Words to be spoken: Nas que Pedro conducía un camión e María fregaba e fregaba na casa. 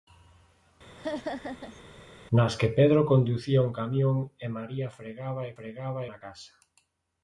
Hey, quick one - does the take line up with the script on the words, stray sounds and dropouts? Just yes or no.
no